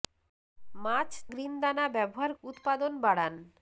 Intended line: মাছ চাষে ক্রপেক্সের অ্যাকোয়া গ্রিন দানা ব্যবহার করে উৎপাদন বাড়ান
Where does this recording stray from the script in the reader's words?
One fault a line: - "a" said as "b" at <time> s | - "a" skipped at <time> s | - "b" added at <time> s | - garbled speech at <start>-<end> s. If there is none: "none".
- "চাষে ক্রপেক্সের অ্যাকোয়া" skipped at 1.1 s
- "করে" skipped at 2.3 s